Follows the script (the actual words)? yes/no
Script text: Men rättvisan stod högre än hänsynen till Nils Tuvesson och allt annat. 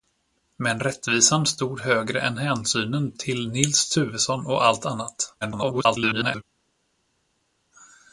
no